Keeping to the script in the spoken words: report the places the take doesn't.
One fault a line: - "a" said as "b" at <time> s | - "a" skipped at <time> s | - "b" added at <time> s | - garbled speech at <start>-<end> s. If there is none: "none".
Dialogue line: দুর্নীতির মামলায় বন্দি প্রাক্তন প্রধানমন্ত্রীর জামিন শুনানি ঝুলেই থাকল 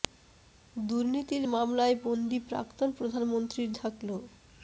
- "জামিন শুনানি ঝুলেই" skipped at 3.7 s